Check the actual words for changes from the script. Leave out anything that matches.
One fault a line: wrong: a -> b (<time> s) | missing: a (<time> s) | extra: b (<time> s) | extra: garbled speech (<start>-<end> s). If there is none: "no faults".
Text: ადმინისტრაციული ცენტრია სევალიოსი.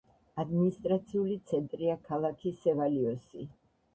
extra: ქალაქი (2.1 s)